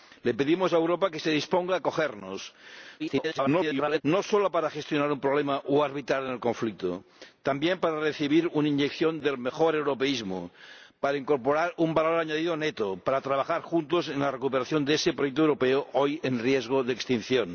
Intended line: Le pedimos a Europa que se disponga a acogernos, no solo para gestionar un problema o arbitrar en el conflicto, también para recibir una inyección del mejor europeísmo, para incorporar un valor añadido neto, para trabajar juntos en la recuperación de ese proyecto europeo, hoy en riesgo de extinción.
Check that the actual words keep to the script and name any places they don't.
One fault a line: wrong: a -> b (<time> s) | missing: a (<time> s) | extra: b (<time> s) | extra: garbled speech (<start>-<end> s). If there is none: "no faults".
extra: garbled speech (3.0-4.0 s)